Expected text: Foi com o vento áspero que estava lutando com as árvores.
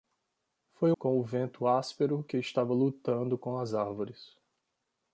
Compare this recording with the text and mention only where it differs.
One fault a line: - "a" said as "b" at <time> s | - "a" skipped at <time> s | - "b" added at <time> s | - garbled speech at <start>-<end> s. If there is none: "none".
none